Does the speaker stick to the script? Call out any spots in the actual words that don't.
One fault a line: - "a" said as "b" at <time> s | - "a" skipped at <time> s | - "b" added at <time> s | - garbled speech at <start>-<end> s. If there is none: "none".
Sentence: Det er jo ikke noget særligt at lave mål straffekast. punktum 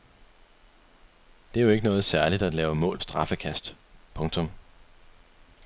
none